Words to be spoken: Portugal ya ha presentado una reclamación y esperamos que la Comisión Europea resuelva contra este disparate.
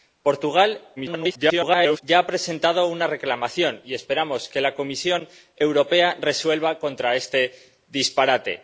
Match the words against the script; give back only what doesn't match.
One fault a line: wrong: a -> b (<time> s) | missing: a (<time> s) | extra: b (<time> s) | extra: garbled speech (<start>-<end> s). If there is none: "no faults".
extra: garbled speech (1.0-2.0 s)